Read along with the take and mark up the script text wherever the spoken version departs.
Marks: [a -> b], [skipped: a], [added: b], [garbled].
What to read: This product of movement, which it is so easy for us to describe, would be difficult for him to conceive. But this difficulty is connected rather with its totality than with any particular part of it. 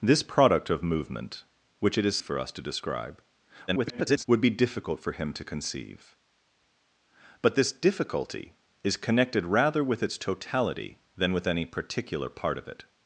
This product of movement, which it is [skipped: so easy] for us to describe, [garbled] would be difficult for him to conceive. But this difficulty is connected rather with its totality than with any particular part of it.